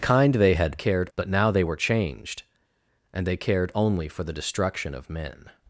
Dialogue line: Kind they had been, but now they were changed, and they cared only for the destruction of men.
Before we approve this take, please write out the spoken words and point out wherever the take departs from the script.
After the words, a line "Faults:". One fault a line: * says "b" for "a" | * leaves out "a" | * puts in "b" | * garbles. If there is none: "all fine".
Kind they had cared, but now they were changed, and they cared only for the destruction of men.
Faults:
* says "cared" for "been"